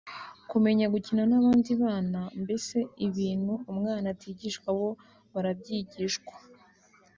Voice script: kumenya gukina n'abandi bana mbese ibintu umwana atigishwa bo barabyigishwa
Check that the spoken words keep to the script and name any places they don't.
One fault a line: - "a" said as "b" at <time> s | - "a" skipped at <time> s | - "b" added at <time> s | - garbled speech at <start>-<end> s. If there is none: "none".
none